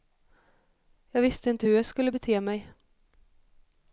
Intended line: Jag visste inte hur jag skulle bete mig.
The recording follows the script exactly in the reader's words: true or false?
true